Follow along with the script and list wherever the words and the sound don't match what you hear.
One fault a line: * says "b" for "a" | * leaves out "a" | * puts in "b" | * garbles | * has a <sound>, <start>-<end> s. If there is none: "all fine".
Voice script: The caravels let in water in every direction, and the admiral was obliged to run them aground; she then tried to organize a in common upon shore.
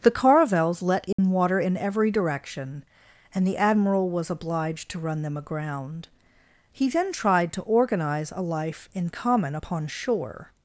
* has a dropout, 1.1-1.2 s
* says "he" for "she"
* puts in "life"